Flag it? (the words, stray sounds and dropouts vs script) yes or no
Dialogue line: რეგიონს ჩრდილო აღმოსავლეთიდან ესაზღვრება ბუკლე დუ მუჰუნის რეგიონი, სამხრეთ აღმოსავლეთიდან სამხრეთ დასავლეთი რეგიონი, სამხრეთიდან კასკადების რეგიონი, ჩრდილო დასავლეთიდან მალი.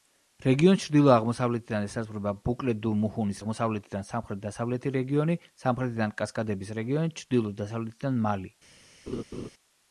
yes